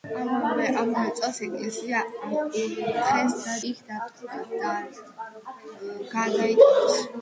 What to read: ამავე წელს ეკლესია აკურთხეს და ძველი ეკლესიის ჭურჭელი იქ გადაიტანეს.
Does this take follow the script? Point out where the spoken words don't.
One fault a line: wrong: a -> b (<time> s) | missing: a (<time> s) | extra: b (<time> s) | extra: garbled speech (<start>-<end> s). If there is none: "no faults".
missing: ძველი ეკლესიის ჭურჭელი (3.5 s)